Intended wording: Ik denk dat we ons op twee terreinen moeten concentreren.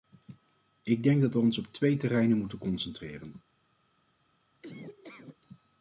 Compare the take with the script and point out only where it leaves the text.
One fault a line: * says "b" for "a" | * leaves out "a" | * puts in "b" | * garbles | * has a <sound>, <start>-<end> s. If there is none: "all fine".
* has a laugh, 4.6-5.4 s